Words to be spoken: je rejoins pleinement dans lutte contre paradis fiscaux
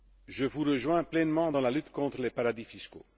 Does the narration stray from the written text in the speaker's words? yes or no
yes